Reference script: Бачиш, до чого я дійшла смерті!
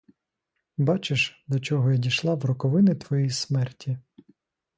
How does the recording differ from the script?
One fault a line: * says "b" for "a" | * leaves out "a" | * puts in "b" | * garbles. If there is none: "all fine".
* puts in "в роковини твоєї"